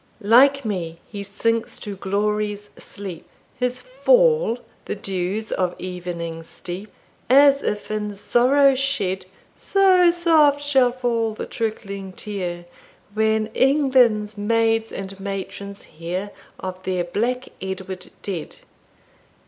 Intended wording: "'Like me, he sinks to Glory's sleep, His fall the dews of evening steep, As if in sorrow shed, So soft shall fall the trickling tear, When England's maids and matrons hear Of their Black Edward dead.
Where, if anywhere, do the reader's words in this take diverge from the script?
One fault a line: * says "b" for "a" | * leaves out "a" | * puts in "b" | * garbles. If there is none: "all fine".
all fine